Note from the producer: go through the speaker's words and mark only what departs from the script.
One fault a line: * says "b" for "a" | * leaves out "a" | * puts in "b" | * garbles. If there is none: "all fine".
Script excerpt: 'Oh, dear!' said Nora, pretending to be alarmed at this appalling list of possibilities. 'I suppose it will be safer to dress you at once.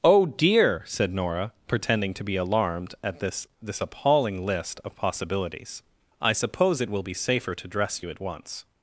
* puts in "this"